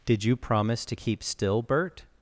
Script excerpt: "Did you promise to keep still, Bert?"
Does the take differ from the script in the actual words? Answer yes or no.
no